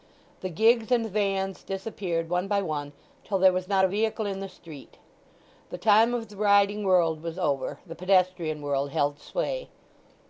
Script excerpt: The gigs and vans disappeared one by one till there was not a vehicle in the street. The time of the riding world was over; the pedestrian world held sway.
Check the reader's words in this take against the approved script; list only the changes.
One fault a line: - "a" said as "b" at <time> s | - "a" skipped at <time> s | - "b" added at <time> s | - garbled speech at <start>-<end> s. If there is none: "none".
none